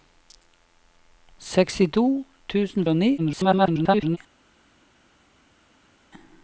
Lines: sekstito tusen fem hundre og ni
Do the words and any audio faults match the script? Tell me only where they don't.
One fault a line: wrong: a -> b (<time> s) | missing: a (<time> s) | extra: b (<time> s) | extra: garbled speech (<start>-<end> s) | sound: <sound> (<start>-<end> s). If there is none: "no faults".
missing: fem hundre (2.9 s)
extra: garbled speech (3.2-4.2 s)